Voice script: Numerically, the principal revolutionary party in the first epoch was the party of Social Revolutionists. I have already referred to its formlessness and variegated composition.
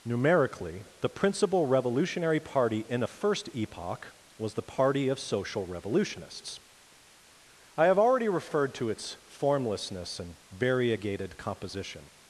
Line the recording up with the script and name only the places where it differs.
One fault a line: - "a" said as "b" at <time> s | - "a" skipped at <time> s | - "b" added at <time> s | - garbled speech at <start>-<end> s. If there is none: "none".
- "the" said as "a" at 3.0 s